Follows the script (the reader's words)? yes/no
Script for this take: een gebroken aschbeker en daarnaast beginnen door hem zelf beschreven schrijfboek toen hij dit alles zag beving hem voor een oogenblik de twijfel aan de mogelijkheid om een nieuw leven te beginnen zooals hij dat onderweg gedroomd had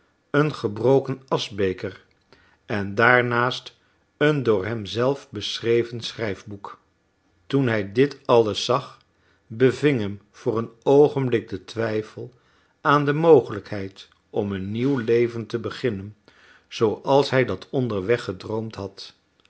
no